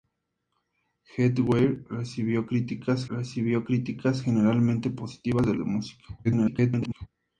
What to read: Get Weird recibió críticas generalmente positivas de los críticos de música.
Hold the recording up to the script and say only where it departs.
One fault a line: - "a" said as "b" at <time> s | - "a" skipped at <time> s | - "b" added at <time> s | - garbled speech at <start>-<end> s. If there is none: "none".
- "recibió críticas" added at 3.1 s
- "los críticos" skipped at 5.5 s
- garbled speech at 6.2-7.1 s